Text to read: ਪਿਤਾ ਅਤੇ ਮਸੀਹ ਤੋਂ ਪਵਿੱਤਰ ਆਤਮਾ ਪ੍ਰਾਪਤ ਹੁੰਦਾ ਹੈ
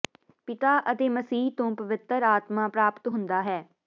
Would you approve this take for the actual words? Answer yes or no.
yes